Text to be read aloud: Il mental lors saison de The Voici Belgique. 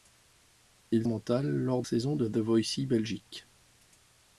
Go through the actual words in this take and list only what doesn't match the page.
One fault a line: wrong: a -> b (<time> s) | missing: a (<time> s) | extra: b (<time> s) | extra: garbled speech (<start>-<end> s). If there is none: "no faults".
no faults